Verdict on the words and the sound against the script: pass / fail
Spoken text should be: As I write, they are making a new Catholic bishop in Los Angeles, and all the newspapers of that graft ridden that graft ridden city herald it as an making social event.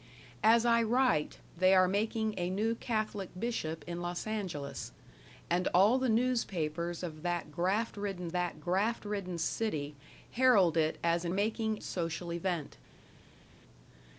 pass